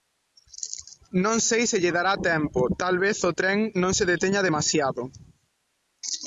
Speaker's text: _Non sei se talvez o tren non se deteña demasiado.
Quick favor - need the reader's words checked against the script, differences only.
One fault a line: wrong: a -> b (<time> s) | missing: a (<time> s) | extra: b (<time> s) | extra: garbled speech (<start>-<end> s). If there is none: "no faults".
extra: lle dará tempo (1.8 s)